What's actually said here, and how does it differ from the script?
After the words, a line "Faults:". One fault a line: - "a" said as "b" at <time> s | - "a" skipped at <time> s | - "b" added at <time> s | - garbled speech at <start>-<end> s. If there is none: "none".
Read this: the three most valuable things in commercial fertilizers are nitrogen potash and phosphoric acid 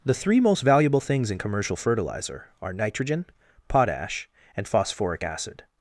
the three most valuable things in commercial fertilizer are nitrogen potash and phosphoric acid
Faults:
- "fertilizers" said as "fertilizer" at 1.7 s